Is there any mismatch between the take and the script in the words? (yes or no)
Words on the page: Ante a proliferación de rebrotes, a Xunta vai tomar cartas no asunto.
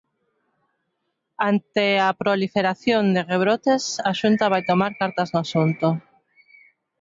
no